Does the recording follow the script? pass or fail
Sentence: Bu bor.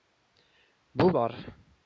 pass